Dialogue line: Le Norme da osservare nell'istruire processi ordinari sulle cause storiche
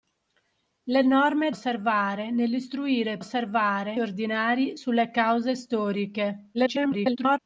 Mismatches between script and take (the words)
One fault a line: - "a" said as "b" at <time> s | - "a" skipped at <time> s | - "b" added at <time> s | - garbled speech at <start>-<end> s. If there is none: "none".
- "da" skipped at 1.5 s
- "processi" said as "osservare" at 3.2 s
- garbled speech at 6.5-7.4 s